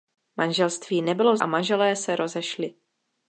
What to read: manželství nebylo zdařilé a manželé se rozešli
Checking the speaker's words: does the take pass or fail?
fail